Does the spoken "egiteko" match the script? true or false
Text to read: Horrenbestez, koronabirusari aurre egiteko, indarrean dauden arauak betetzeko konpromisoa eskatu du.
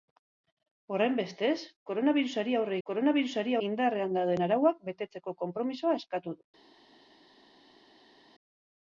false